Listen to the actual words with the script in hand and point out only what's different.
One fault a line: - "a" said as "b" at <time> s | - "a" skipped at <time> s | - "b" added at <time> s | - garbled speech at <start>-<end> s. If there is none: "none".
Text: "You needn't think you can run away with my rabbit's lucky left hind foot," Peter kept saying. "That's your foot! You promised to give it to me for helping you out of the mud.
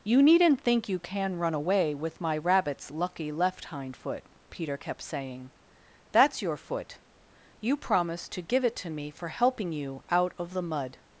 none